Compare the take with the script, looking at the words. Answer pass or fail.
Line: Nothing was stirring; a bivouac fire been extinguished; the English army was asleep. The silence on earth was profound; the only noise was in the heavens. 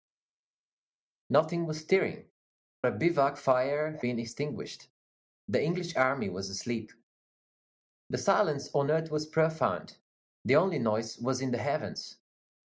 pass